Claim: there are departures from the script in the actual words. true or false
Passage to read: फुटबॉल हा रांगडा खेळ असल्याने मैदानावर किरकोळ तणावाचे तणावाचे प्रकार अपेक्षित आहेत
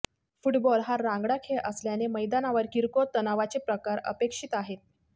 true